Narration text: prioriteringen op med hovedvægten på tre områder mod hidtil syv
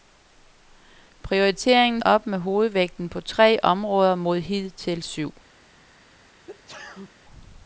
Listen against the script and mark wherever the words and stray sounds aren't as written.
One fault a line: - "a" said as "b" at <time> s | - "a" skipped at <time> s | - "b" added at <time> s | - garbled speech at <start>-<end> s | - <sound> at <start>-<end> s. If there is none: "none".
- sneeze at 6.5-7.1 s